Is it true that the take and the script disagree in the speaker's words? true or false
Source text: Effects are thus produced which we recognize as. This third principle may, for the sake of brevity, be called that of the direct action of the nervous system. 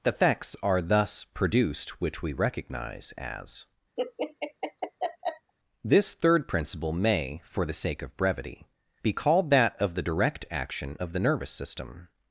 false